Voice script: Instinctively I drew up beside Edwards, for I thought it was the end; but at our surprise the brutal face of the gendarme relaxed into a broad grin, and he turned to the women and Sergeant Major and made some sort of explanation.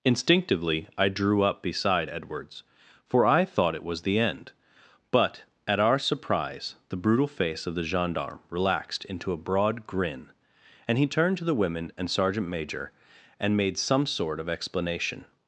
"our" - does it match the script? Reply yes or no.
yes